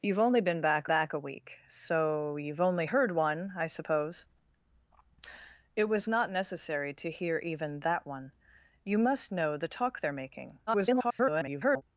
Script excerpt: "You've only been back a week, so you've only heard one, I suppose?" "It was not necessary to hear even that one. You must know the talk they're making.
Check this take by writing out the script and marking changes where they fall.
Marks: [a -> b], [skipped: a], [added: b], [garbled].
"You've only been back [added: back] a week, so you've only heard one, I suppose?" "It was not necessary to hear even that one. You must know the talk they're making. [garbled]